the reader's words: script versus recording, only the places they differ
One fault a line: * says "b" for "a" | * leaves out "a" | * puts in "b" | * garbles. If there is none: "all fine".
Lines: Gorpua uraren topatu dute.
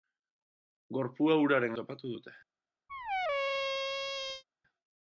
all fine